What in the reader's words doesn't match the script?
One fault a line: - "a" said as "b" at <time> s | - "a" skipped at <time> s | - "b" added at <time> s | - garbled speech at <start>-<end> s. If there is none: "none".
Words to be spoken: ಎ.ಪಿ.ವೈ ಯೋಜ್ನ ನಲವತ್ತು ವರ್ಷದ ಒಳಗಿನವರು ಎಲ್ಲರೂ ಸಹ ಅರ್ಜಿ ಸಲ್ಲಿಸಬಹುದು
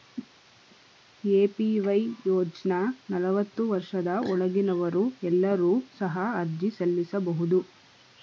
none